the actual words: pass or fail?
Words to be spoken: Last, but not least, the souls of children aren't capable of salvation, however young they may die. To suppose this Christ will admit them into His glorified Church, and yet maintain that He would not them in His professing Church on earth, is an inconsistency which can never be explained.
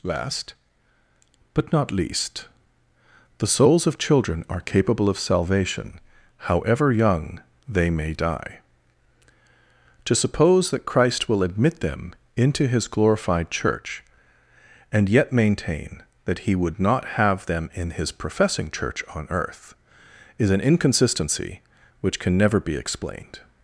fail